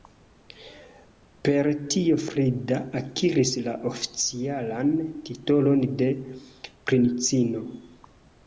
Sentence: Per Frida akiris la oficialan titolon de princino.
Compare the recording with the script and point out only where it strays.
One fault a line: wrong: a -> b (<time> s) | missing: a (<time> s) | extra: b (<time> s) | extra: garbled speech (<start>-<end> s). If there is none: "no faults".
extra: tio (1.9 s)